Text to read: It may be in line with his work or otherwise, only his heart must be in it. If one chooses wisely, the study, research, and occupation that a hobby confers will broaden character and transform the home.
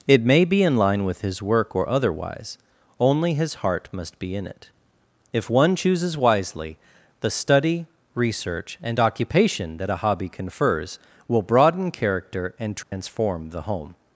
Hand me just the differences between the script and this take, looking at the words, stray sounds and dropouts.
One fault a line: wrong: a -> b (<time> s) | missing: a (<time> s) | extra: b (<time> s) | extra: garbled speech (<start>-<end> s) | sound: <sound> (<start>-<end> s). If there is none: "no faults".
sound: dropout (12.8-12.9 s)